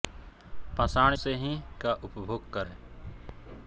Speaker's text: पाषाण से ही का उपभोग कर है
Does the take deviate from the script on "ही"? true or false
false